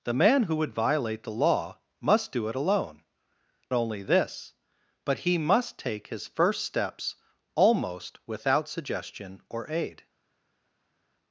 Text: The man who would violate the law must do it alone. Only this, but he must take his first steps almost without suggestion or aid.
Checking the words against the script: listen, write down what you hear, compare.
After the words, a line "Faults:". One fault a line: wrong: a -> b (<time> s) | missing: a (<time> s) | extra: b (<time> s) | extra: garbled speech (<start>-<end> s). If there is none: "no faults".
The man who would violate the law must do it alone. Only this, but he must take his first steps almost without suggestion or aid.
Faults:
no faults